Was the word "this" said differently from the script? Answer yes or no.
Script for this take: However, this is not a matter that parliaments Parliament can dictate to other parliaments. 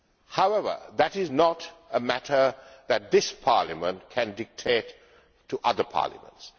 yes